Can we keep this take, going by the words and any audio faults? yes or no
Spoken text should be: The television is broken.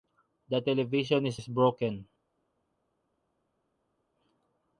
no